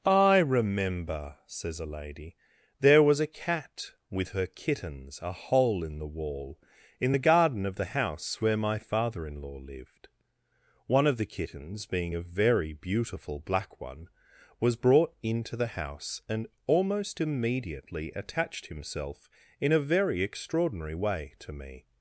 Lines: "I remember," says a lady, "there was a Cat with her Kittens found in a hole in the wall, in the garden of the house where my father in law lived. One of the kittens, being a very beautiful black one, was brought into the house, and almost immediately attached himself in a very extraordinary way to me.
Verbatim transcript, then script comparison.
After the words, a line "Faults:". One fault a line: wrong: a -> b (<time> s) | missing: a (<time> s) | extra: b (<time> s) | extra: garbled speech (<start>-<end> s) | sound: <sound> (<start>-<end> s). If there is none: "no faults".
"I remember," says a lady, "there was a Cat with her Kittens a hole in the wall, in the garden of the house where my father in law lived. One of the kittens, being a very beautiful black one, was brought into the house, and almost immediately attached himself in a very extraordinary way to me.
Faults:
missing: found in (5.2 s)